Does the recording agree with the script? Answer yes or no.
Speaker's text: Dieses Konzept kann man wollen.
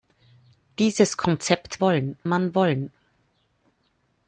no